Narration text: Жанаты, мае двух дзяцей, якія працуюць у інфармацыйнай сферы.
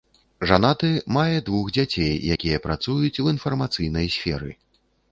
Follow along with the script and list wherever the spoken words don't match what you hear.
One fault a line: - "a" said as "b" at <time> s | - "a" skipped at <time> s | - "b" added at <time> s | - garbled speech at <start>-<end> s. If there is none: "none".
none